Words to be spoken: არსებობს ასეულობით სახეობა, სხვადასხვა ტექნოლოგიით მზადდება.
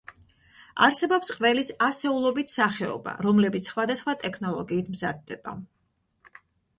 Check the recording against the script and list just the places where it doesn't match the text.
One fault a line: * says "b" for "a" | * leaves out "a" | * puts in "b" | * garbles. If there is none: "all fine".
* puts in "ყველის"
* puts in "რომლებიც"